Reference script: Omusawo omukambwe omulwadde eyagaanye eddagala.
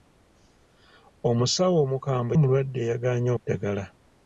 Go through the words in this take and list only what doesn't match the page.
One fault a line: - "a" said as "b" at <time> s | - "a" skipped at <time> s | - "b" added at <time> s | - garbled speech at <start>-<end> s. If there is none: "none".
none